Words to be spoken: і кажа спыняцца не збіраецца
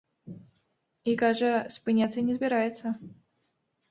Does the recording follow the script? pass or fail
pass